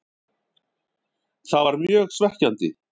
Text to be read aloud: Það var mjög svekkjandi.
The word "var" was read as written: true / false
true